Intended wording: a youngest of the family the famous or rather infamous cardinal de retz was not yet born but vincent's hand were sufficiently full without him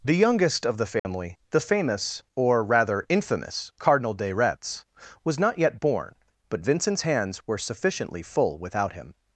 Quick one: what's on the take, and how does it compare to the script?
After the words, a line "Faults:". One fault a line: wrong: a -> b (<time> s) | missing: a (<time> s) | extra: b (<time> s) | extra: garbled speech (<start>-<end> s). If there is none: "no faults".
the youngest of the family the famous or rather infamous cardinal de retz was not yet born but vincent's hands were sufficiently full without him
Faults:
wrong: a -> the (0.0 s)
wrong: hand -> hands (7.0 s)